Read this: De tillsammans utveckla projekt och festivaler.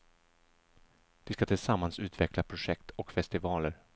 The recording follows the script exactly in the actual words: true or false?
false